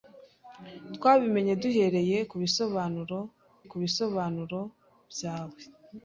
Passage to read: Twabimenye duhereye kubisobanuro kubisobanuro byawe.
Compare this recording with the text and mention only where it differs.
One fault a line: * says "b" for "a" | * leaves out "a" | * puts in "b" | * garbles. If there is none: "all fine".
all fine